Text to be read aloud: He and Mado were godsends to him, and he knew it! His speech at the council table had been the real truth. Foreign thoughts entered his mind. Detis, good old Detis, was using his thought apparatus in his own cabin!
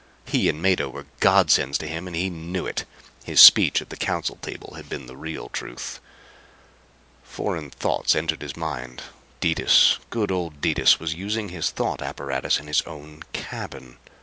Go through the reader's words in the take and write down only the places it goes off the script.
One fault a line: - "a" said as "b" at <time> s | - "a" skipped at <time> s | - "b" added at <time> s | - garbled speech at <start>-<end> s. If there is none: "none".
none